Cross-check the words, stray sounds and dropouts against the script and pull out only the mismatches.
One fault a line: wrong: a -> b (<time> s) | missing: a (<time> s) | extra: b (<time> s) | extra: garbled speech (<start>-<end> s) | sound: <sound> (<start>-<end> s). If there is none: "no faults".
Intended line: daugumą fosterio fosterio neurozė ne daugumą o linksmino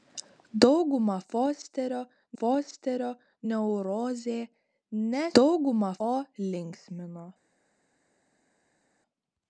no faults